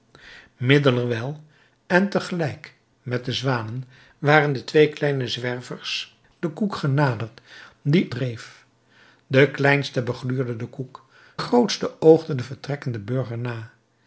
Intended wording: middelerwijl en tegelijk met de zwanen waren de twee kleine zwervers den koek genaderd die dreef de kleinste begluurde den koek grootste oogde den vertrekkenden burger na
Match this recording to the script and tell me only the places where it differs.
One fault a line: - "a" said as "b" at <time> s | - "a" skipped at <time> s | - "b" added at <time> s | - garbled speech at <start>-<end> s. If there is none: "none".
none